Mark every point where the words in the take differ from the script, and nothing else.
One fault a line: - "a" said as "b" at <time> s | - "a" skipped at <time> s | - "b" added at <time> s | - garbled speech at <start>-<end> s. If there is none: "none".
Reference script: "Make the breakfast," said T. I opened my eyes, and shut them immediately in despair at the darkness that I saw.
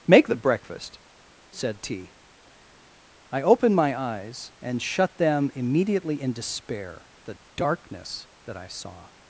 - "at" skipped at 7.1 s